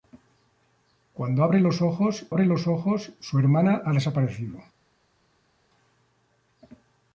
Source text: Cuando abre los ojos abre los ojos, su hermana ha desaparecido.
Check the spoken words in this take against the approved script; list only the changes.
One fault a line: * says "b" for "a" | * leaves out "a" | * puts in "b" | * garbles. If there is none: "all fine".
all fine